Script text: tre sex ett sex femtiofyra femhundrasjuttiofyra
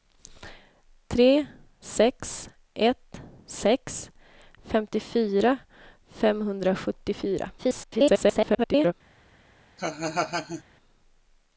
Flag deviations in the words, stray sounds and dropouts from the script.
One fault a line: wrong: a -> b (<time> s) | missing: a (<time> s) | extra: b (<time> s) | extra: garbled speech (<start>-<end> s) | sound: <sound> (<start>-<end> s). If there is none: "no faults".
extra: garbled speech (7.6-8.9 s)
sound: laugh (9.8-10.6 s)